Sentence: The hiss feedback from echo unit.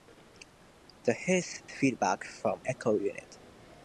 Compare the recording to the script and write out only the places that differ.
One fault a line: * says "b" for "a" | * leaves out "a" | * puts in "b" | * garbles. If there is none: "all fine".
all fine